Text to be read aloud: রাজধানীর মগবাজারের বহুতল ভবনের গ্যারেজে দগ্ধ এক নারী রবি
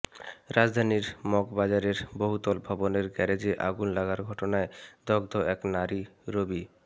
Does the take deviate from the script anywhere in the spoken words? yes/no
yes